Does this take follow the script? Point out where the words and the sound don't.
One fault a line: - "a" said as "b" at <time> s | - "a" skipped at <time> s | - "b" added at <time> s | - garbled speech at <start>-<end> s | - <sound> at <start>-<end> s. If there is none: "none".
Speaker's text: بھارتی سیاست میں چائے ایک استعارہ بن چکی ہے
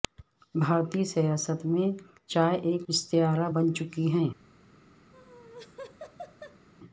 - laugh at 5.1-6.7 s